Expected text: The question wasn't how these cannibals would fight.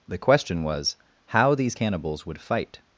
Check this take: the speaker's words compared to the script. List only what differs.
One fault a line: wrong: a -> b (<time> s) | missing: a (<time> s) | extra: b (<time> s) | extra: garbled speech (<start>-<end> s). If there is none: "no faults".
wrong: wasn't -> was (0.6 s)